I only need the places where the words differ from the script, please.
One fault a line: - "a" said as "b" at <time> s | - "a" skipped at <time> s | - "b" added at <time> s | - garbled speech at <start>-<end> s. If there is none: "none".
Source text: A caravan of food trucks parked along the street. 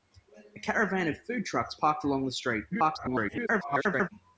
- garbled speech at 2.7-4.1 s